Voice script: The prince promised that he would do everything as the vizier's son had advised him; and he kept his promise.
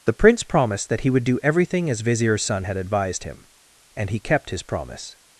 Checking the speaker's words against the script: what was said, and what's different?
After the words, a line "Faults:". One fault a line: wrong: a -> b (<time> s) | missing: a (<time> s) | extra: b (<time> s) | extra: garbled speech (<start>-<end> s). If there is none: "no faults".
The prince promised that he would do everything as vizier's son had advised him; and he kept his promise.
Faults:
missing: the (2.0 s)